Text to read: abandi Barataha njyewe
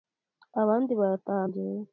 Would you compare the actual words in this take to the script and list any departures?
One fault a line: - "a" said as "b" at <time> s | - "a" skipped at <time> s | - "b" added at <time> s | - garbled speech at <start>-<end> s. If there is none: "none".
none